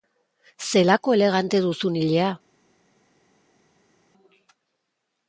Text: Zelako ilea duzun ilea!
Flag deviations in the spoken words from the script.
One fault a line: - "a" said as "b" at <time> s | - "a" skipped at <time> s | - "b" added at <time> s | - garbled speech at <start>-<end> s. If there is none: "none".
- "ilea" said as "elegante" at 1.2 s